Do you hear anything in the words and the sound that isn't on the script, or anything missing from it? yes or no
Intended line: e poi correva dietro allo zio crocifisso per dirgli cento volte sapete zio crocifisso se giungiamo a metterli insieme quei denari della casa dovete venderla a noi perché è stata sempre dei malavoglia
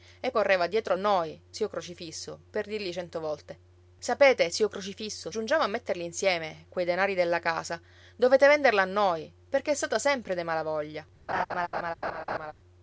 yes